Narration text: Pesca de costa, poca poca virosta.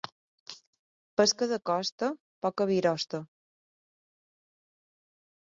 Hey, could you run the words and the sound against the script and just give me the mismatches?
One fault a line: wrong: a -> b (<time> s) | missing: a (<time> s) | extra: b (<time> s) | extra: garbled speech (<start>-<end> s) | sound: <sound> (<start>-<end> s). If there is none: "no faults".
missing: poca (2.7 s)